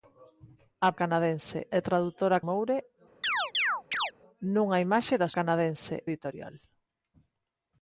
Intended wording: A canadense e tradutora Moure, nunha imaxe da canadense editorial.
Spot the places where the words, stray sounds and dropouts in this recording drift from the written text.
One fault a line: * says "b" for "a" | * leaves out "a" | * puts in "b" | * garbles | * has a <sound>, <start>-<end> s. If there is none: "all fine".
* has a chirp, 3.2-4.1 s